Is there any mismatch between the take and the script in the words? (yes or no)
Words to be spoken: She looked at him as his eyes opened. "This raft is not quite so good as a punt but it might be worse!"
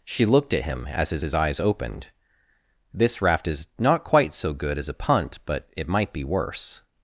yes